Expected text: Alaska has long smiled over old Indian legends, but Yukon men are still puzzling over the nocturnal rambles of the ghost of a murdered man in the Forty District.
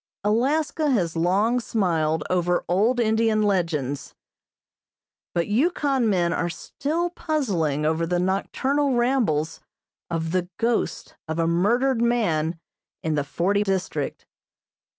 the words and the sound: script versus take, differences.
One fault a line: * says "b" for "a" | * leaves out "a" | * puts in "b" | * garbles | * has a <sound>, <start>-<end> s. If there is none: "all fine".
all fine